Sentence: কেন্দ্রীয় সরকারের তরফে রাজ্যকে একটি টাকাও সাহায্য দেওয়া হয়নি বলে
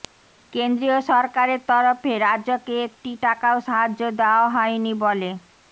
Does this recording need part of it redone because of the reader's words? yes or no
no